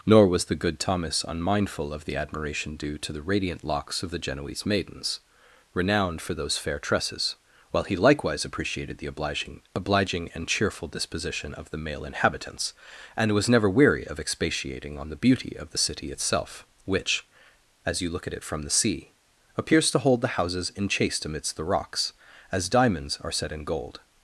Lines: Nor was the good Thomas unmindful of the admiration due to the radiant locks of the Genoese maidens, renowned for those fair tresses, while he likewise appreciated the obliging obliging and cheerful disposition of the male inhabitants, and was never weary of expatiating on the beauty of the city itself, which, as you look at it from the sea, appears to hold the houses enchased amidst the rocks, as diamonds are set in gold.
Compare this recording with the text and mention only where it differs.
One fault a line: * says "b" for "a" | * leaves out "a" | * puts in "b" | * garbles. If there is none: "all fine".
all fine